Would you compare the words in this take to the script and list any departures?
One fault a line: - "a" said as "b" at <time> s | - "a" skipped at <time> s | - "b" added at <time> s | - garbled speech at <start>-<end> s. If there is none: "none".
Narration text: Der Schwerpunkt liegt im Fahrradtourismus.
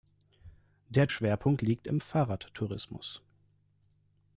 none